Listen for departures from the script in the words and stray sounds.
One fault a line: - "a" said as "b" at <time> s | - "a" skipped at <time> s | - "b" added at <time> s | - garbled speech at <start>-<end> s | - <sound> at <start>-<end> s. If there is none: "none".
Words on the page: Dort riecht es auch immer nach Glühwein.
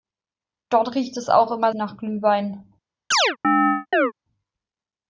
- chirp at 3.1-4.1 s